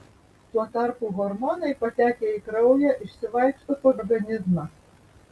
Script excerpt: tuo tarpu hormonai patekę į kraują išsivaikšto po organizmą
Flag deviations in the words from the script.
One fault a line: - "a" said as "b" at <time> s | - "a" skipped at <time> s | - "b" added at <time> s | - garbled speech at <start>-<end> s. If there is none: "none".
none